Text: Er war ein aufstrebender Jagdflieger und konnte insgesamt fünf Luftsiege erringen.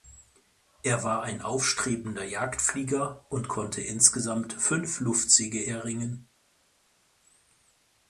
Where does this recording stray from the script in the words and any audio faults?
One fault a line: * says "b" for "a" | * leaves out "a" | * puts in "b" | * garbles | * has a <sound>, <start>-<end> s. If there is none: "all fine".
all fine